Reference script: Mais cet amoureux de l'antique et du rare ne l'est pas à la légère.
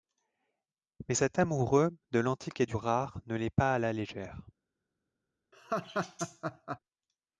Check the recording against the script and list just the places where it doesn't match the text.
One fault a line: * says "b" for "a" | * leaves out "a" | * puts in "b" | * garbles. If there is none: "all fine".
all fine